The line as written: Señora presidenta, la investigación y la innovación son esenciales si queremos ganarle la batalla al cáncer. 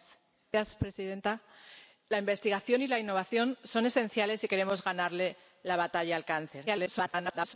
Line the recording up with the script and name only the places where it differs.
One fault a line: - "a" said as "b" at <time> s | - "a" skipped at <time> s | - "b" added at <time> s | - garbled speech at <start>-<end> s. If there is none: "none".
- garbled speech at 6.7-7.6 s